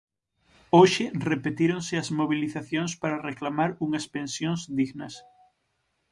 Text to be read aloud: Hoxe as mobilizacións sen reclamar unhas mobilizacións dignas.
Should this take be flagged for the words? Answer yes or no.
yes